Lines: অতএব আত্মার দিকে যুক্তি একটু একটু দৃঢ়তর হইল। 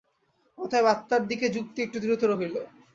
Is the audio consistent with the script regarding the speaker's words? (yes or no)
no